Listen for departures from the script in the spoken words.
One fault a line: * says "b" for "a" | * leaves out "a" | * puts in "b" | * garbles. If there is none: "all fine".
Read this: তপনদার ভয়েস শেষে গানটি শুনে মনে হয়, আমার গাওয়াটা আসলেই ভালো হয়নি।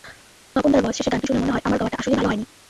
all fine